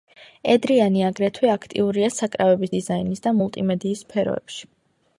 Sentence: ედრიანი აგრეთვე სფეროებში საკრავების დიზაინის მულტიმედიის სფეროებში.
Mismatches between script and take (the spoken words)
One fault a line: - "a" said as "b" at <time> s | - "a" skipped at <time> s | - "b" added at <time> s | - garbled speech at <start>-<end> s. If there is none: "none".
- "სფეროებში" said as "აქტიურია" at 1.6 s
- "და" added at 3.3 s